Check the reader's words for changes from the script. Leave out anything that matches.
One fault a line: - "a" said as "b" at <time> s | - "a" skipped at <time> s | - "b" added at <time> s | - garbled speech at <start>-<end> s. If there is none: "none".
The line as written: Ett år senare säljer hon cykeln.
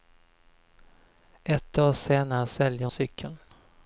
- "hon" skipped at 2.9 s